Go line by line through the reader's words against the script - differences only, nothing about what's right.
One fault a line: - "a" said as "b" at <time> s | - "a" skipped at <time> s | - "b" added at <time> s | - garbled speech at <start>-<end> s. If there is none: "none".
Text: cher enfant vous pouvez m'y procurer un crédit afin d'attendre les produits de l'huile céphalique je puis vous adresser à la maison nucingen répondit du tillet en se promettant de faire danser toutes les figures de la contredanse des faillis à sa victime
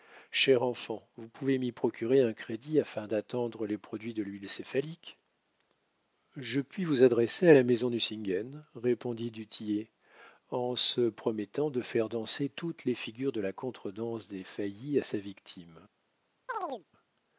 none